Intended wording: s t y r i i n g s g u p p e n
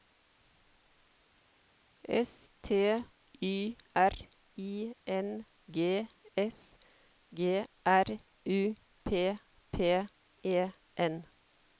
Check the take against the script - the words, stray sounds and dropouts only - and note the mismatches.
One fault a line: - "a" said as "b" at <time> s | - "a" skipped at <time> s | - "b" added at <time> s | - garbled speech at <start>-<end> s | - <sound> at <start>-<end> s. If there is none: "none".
- "i" skipped at 5.0 s
- "r" added at 7.8 s